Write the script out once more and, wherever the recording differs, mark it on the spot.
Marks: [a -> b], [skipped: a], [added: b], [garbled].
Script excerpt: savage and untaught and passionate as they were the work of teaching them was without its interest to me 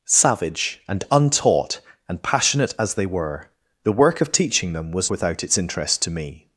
savage and untaught and passionate as they were the work of teaching them was without its interest to me